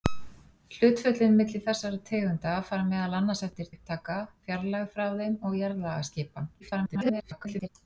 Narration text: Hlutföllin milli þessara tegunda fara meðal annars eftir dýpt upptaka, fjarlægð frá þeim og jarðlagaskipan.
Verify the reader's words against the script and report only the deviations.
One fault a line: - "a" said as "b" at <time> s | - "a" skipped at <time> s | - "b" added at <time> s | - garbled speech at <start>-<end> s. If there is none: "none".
- "dýpt" skipped at 3.7 s
- garbled speech at 6.6-7.7 s